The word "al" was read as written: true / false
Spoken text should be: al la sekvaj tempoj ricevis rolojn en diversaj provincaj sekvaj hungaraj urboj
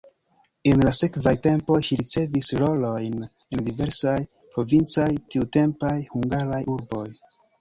false